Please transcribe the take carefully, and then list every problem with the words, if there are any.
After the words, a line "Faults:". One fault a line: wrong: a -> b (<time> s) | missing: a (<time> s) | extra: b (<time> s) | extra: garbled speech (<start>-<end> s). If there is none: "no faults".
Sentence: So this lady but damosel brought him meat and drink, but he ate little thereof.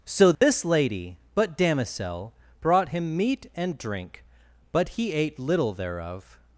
So this lady but damosel brought him meat and drink, but he ate little thereof.
Faults:
no faults